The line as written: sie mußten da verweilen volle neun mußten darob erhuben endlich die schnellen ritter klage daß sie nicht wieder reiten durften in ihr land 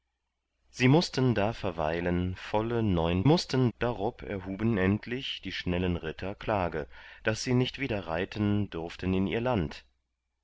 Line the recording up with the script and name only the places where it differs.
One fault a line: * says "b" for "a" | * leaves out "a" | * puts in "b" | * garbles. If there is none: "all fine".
all fine